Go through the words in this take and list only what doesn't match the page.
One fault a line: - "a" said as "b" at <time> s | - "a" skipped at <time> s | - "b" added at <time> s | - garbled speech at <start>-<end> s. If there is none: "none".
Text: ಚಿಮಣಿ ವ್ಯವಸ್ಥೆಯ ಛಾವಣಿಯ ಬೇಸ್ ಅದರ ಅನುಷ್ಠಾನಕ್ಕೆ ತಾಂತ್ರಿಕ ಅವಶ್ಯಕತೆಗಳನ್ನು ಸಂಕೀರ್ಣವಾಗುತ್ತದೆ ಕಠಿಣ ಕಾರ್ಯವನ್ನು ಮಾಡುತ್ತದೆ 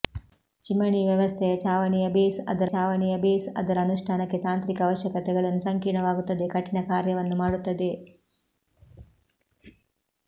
- "ಛಾವಣಿಯ ಬೇಸ್ ಅದರ" added at 2.7 s